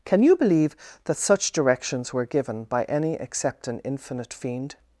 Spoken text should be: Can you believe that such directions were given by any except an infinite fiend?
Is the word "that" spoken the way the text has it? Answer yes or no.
yes